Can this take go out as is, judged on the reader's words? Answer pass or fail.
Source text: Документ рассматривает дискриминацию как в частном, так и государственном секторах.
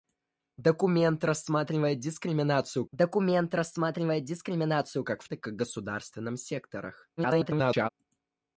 fail